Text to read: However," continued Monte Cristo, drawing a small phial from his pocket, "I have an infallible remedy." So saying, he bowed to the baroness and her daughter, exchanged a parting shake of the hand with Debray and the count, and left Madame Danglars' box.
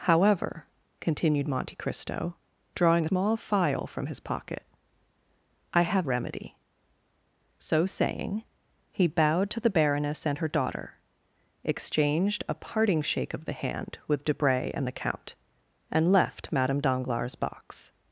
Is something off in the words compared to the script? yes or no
yes